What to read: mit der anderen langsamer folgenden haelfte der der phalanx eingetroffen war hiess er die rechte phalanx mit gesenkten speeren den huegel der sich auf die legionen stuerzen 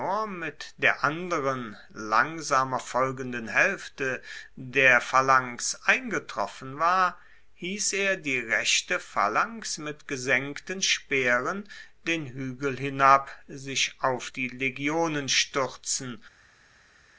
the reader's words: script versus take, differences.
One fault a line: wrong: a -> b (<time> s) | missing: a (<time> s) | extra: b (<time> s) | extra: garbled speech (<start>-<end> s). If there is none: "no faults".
missing: der (5.0 s)
wrong: der -> hinab (12.8 s)